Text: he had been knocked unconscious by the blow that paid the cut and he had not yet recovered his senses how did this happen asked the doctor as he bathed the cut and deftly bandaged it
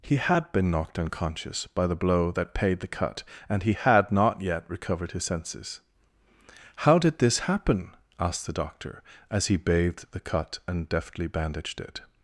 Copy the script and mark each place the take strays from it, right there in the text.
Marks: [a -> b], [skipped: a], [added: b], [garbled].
he had been knocked unconscious by the blow that paid the cut and he had not yet recovered his senses how did this happen asked the doctor as he bathed the cut and deftly bandaged it